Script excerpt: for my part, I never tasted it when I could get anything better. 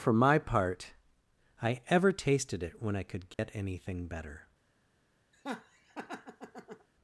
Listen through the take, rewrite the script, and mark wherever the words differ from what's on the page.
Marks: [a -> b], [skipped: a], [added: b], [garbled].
for my part, I [never -> ever] tasted it when I could get anything better.